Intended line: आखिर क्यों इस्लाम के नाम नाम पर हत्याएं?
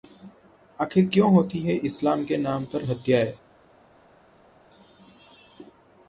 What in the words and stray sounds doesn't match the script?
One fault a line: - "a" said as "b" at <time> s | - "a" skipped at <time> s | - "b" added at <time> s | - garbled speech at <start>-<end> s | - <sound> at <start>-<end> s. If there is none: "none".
- "होती हैं" added at 1.3 s
- "नाम" skipped at 2.6 s